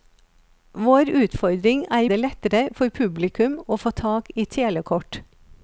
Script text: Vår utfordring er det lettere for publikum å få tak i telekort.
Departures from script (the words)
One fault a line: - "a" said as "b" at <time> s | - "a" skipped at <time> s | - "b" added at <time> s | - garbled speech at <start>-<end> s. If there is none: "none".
none